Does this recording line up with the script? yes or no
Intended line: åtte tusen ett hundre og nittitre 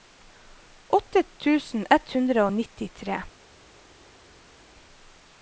yes